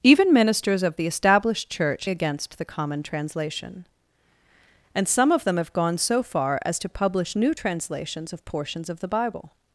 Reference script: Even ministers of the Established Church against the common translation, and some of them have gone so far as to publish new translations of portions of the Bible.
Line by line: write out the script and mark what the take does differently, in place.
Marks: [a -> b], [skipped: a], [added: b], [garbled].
Even ministers of the Established Church against the common translation, and some of them have gone so far as to publish new translations of portions of the Bible.